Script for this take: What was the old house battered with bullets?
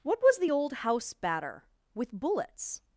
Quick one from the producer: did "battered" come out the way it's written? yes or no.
no